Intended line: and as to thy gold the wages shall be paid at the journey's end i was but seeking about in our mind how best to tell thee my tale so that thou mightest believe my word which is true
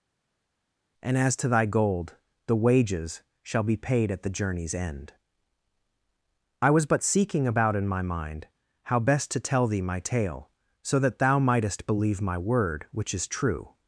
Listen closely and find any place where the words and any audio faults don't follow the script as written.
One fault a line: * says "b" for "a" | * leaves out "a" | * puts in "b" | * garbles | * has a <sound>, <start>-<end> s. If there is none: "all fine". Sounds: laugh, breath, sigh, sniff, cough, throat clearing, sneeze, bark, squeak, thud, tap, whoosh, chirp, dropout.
* says "my" for "our"